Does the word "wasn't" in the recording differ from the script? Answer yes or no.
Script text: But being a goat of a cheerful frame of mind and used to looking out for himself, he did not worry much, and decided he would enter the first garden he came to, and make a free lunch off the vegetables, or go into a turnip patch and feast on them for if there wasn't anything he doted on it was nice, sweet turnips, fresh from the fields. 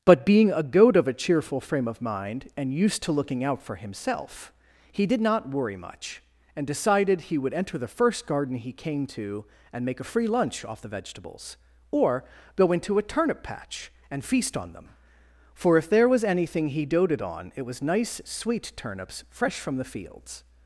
yes